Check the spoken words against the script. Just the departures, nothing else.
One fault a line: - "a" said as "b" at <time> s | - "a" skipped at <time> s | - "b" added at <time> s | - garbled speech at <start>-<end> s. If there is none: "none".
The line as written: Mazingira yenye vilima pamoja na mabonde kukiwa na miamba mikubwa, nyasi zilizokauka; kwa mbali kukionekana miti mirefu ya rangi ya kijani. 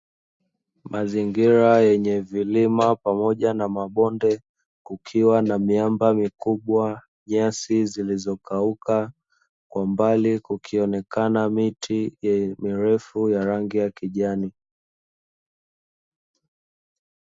none